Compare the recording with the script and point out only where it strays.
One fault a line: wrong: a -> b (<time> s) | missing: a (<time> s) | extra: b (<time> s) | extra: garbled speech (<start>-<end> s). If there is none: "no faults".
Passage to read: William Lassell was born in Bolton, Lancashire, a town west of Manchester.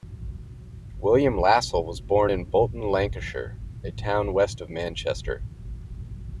no faults